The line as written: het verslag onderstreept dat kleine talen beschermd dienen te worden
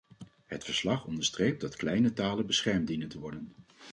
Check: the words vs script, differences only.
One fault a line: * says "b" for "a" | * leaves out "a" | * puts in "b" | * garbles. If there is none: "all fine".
all fine